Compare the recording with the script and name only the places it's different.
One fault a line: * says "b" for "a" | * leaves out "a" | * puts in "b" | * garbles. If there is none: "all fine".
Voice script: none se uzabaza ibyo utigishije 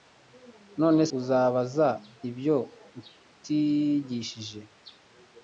* leaves out "se"